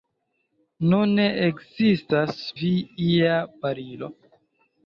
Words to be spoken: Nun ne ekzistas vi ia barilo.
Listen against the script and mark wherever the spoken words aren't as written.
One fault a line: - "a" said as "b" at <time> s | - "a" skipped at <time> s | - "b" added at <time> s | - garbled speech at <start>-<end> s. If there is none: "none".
none